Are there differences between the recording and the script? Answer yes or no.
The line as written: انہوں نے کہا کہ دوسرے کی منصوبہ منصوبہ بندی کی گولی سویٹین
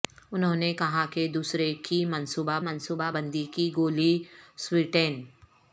no